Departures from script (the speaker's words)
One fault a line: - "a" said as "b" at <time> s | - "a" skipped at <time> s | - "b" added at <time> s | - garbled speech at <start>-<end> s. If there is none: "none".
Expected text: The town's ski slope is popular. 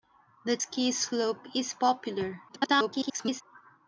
- "town's" skipped at 0.6 s
- garbled speech at 2.5-3.4 s